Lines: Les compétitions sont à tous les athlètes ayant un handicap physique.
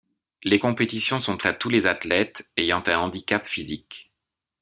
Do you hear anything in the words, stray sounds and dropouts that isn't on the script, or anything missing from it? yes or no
no